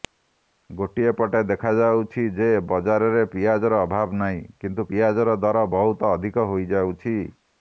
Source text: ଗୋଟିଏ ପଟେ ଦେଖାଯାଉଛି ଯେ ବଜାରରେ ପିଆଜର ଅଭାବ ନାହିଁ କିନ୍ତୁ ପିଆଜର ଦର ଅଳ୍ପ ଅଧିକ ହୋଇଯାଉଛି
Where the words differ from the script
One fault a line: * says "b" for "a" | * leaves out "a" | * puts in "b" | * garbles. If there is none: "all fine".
* says "ବହୁତ" for "ଅଳ୍ପ"